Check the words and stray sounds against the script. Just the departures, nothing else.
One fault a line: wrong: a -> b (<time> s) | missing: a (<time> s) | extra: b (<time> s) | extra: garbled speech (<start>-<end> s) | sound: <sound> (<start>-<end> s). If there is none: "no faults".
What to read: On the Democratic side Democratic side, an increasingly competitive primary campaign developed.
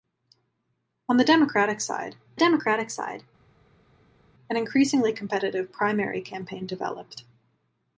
no faults